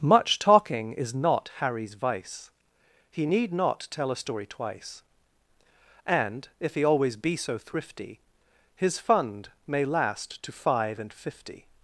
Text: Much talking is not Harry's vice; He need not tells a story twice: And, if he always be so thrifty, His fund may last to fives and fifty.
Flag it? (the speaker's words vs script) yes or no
yes